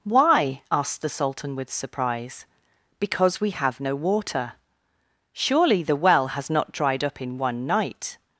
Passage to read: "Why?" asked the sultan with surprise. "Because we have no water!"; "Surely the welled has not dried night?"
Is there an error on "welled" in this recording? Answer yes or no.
yes